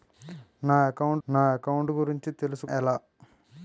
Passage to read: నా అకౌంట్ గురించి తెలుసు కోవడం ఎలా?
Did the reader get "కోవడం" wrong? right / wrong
wrong